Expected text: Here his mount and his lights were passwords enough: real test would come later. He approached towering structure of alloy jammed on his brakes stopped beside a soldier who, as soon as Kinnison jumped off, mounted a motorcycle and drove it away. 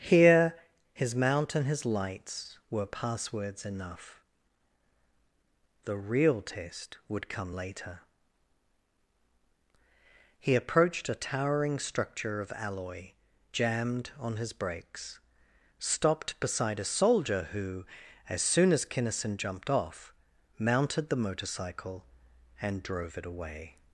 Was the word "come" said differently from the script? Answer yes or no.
no